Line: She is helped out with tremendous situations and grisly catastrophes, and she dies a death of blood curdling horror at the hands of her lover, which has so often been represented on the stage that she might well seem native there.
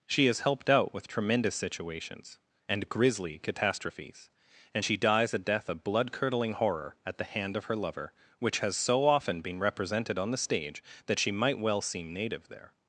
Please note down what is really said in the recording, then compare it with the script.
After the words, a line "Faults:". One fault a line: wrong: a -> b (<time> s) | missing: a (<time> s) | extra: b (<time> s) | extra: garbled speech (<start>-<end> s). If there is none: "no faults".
She is helped out with tremendous situations and grisly catastrophes, and she dies a death of blood curdling horror at the hand of her lover, which has so often been represented on the stage that she might well seem native there.
Faults:
wrong: hands -> hand (7.2 s)